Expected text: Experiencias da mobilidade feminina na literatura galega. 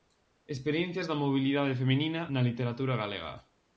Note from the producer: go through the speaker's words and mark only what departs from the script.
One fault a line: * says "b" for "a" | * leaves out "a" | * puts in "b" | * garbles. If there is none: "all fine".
all fine